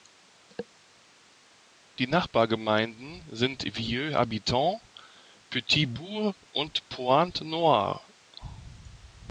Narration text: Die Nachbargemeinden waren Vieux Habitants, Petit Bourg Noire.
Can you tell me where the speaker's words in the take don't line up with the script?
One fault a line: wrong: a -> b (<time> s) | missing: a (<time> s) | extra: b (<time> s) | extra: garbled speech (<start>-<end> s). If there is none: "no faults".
wrong: waren -> sind (3.3 s)
extra: und Pointe (6.5 s)